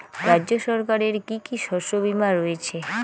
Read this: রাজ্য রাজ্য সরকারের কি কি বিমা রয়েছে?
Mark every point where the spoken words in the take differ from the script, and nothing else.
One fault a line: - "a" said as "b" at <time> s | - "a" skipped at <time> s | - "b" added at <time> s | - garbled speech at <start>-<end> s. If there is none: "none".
- "রাজ্য" skipped at 0.5 s
- "শস্য" added at 1.6 s